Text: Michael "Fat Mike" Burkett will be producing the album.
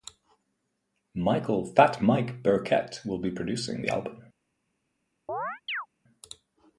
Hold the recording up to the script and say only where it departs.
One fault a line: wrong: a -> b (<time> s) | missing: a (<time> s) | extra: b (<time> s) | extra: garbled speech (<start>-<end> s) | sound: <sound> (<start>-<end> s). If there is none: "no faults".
sound: chirp (5.3-5.9 s)